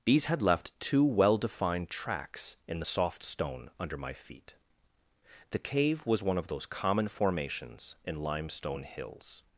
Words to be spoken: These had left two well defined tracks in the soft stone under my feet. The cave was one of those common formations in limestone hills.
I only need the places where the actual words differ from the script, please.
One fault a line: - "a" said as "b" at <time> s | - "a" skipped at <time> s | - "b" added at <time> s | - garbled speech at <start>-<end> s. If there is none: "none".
none